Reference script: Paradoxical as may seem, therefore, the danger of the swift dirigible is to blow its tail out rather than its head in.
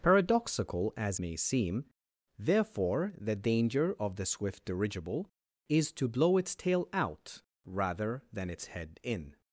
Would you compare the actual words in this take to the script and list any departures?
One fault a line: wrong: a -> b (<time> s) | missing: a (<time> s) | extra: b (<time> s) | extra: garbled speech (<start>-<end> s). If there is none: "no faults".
no faults